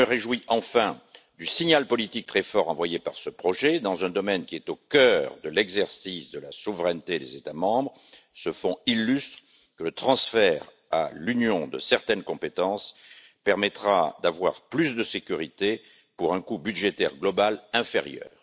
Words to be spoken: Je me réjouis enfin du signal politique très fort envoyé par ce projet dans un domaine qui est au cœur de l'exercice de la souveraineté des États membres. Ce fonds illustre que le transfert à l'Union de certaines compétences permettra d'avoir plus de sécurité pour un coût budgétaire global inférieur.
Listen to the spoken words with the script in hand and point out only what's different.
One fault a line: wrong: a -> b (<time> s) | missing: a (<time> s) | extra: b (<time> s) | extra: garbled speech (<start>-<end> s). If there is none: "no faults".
no faults